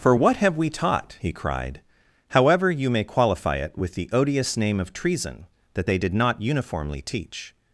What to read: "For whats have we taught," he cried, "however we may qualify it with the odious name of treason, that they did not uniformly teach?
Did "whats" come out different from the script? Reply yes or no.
yes